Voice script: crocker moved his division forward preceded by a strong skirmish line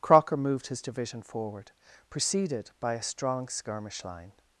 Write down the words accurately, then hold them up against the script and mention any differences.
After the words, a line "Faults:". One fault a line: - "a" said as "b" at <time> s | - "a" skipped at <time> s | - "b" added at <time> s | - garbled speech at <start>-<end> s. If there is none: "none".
crocker moved his division forward preceded by a strong skirmish line
Faults:
none